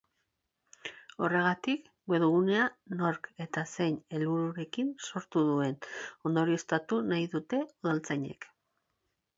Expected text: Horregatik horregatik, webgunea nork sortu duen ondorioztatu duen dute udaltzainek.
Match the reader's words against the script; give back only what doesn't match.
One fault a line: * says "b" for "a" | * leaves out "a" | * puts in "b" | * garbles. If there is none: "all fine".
* leaves out "horregatik"
* puts in "eta zein helbururekin"
* says "nahi" for "duen"